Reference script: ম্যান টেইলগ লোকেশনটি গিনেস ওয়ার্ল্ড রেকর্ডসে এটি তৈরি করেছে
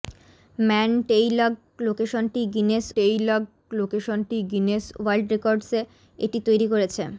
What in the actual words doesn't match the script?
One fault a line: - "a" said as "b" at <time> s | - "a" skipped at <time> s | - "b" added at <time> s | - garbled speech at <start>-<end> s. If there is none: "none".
- "টেইলগ লোকেশনটি গিনেস" added at 3.0 s